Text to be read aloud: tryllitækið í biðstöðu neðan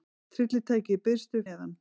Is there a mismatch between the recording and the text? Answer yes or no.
no